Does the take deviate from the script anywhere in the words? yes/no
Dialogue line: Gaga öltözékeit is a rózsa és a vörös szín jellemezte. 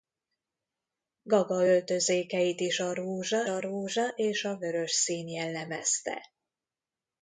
yes